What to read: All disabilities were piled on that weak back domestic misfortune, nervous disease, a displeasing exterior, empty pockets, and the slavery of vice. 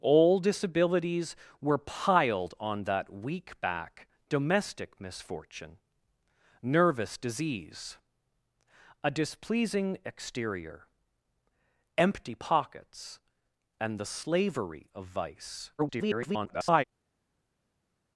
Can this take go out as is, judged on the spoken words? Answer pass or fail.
fail